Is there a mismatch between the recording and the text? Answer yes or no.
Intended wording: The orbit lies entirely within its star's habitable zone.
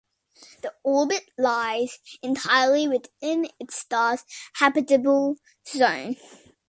no